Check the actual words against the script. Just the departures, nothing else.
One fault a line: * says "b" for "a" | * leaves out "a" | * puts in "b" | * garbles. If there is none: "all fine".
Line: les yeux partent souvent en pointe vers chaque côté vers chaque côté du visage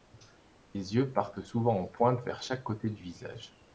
* leaves out "vers chaque côté"